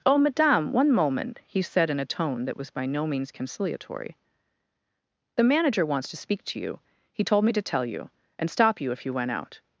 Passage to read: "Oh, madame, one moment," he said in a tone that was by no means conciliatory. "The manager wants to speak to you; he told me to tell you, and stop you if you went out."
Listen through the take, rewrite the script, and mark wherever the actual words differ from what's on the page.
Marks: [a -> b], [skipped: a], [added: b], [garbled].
"Oh, madame, one moment," he said in a tone that was by no means conciliatory. "The manager wants to speak to you; he told me to tell you, and stop you if you went out."